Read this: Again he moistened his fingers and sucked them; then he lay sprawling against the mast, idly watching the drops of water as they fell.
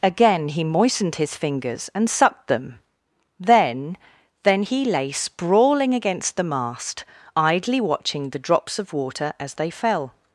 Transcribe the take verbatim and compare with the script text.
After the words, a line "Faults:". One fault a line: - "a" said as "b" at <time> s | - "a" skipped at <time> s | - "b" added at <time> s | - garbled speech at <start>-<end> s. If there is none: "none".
Again he moistened his fingers and sucked them; then then he lay sprawling against the mast, idly watching the drops of water as they fell.
Faults:
- "then" added at 4.4 s